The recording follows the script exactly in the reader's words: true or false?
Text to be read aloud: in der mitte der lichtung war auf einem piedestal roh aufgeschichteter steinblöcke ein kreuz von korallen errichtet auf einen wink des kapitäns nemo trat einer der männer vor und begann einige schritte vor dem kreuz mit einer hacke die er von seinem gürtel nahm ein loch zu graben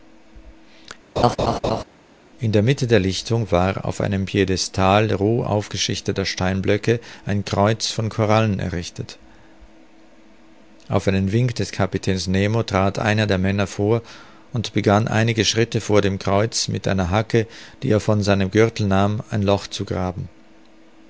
true